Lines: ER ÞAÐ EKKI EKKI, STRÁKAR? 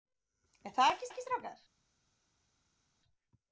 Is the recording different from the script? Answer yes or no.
no